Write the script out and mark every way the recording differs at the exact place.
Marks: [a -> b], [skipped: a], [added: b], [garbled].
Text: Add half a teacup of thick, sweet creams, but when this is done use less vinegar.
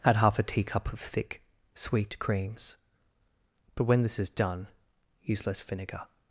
Add half a teacup of thick, sweet creams, but when this is done use less vinegar.